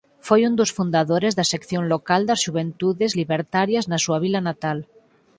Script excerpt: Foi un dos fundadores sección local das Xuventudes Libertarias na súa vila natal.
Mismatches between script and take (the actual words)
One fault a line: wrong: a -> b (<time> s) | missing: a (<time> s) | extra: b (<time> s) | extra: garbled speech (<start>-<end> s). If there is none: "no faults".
extra: da (1.4 s)